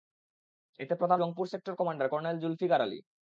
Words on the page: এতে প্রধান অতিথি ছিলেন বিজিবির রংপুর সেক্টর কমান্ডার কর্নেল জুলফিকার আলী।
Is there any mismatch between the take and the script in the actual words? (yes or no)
yes